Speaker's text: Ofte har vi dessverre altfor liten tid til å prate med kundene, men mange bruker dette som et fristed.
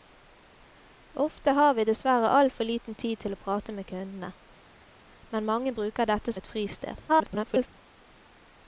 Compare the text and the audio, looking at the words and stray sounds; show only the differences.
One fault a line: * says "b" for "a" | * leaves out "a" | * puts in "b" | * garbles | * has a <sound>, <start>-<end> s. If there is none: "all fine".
* leaves out "som"
* garbles